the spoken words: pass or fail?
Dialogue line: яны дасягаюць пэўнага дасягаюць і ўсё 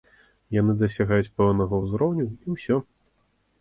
fail